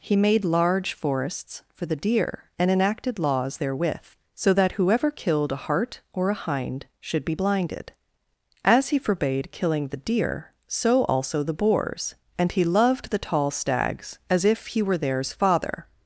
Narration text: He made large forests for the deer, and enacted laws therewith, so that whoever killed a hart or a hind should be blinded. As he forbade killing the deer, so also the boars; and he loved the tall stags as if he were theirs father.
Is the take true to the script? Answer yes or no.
yes